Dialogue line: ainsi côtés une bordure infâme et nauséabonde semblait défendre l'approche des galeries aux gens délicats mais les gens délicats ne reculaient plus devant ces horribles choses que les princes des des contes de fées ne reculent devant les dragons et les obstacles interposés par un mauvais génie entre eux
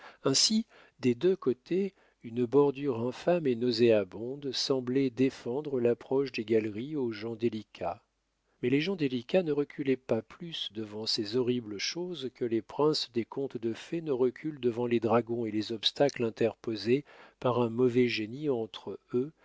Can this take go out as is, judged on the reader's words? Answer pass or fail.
fail